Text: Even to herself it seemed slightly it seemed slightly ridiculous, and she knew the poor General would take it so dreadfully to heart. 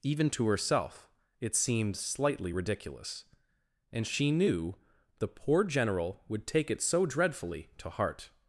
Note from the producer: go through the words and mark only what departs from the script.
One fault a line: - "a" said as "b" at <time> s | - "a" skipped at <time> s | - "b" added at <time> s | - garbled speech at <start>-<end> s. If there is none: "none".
- "it seemed slightly" skipped at 2.5 s